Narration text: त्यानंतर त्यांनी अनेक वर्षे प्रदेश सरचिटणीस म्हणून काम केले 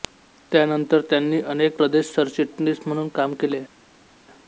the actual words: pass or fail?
fail